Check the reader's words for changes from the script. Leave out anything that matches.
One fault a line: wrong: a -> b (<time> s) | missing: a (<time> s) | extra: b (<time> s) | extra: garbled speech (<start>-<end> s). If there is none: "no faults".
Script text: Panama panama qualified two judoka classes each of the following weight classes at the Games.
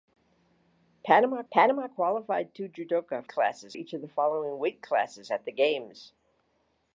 no faults